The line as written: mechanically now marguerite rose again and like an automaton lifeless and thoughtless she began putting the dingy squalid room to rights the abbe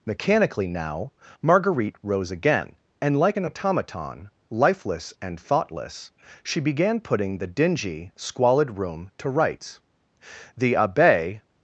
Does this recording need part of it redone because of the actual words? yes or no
no